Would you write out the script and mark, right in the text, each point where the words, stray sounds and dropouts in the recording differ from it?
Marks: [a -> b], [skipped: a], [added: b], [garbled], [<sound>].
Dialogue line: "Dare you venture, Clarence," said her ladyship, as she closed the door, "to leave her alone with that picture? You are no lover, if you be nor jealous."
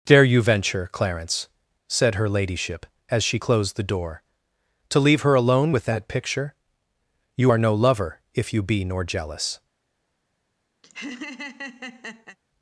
"Dare you venture, Clarence," said her ladyship, as she closed the door, "to leave her alone with that picture? You are no lover, if you be nor jealous." [laugh]